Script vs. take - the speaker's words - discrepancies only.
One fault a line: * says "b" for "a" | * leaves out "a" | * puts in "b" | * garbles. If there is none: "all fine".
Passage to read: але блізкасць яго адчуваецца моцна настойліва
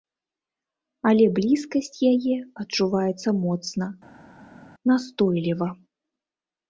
* says "яе" for "яго"